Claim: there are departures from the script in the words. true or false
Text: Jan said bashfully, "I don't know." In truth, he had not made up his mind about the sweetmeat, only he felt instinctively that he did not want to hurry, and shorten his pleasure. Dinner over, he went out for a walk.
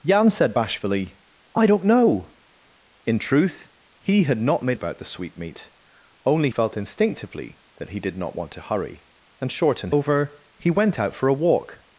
true